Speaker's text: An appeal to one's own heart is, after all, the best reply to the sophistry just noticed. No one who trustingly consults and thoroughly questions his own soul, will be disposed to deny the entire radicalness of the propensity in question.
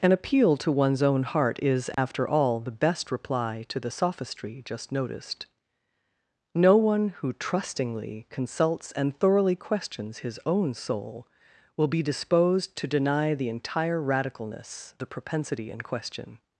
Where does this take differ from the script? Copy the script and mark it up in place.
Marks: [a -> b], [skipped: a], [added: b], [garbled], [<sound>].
An appeal to one's own heart is, after [dropout] all, the best reply to the sophistry just noticed. No one who trustingly consults and thoroughly questions his own soul, will be disposed to deny the entire radicalness [skipped: of] the propensity in question.